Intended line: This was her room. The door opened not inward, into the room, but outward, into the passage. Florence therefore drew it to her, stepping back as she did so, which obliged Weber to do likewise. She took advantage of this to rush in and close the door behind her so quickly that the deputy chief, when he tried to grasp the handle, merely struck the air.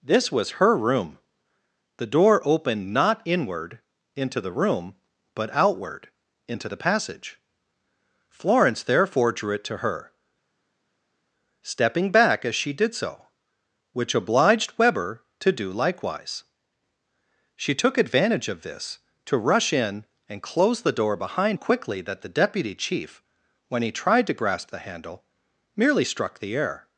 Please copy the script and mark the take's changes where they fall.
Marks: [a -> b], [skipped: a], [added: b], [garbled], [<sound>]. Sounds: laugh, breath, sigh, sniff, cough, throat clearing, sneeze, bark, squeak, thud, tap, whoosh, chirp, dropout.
This was her room. The door opened not inward, into the room, but outward, into the passage. Florence therefore drew it to her, stepping back as she did so, which obliged Weber to do likewise. She took advantage of this to rush in and close the door behind [skipped: her so] quickly that the deputy chief, when he tried to grasp the handle, merely struck the air.